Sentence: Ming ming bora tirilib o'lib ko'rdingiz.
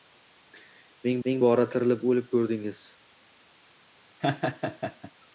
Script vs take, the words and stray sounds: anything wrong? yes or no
yes